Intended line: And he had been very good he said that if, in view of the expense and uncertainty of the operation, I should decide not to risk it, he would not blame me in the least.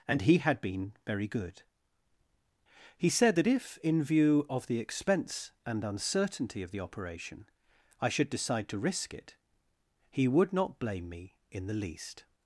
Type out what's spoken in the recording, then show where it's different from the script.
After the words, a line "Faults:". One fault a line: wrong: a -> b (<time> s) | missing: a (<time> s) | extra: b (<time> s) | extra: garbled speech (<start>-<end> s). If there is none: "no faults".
And he had been very good he said that if, in view of the expense and uncertainty of the operation, I should decide to risk it, he would not blame me in the least.
Faults:
missing: not (8.7 s)